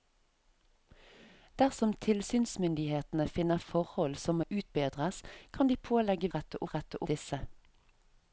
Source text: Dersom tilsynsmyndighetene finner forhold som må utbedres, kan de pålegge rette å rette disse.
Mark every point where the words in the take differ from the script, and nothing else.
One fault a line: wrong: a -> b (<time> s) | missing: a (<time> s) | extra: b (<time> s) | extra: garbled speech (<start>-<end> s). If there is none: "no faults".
no faults